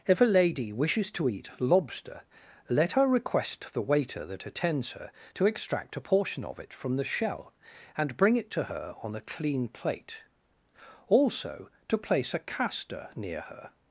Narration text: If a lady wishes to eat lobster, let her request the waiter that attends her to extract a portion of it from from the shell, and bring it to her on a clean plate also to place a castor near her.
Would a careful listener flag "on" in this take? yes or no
no